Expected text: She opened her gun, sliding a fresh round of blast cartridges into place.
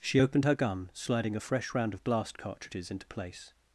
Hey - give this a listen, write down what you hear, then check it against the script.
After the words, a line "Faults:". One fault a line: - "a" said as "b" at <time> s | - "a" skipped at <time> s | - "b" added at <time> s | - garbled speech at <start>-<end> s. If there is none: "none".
She opened her gun, sliding a fresh round of blast cartridges into place.
Faults:
none